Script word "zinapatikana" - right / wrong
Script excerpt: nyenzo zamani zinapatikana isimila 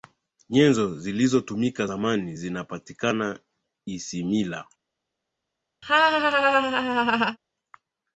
right